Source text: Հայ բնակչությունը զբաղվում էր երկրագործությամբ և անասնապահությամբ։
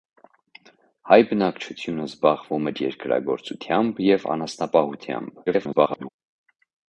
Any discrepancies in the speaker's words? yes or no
yes